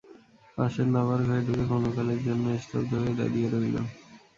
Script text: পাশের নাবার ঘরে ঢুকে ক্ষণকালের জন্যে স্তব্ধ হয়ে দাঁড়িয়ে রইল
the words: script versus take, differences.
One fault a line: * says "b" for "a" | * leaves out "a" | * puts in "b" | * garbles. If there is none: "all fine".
all fine